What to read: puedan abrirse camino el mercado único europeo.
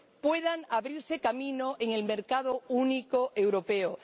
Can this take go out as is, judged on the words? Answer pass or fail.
fail